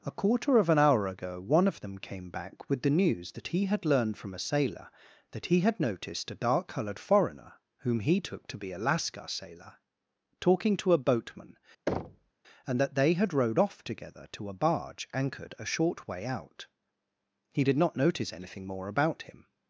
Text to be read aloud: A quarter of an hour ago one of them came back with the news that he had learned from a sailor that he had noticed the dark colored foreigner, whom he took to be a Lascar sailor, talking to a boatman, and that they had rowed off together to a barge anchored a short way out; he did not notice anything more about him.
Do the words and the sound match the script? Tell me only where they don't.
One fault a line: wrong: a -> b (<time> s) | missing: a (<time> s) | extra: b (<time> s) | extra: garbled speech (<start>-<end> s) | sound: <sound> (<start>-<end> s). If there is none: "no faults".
wrong: the -> a (6.3 s)
sound: thud (11.9-12.3 s)